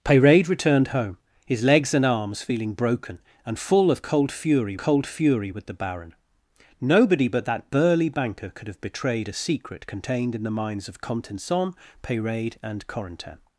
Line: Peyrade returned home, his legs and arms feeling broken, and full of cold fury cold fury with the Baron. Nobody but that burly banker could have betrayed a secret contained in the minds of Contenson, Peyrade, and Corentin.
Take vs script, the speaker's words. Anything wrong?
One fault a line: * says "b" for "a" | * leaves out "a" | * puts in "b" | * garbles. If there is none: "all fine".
all fine